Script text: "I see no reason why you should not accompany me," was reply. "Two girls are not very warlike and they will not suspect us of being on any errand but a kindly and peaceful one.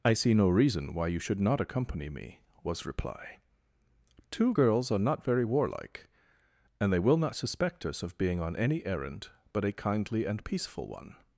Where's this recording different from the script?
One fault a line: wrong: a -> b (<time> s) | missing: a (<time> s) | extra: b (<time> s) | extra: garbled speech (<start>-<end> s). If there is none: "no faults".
no faults